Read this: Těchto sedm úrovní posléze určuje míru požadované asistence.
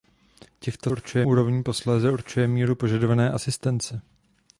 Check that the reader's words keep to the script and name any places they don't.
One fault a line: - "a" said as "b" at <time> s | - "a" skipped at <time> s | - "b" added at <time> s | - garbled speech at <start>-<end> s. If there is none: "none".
- "sedm" said as "určuje" at 0.9 s